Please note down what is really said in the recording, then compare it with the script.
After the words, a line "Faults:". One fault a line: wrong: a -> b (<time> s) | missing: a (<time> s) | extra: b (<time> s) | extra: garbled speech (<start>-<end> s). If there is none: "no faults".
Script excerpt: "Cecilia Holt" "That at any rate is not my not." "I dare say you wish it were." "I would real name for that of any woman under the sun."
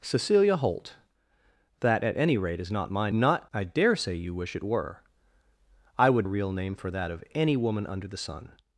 "Cecilia Holt" "That at any rate is not my not." "I dare say you wish it were." "I would real name for that of any woman under the sun."
Faults:
no faults